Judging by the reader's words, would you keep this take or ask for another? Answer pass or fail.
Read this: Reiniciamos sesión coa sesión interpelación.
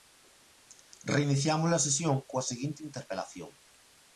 fail